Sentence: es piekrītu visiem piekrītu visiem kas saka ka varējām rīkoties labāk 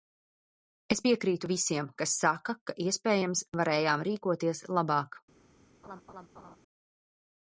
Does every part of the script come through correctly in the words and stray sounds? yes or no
no